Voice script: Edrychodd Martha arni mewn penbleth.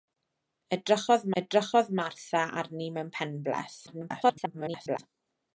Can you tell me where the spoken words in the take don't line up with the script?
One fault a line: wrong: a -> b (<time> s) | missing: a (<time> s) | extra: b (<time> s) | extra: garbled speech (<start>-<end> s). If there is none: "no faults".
extra: edrychodd (1.4 s)
extra: garbled speech (3.9-5.0 s)